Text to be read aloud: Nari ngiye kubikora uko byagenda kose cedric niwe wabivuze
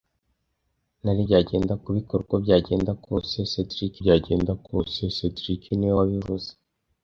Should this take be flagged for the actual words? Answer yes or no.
yes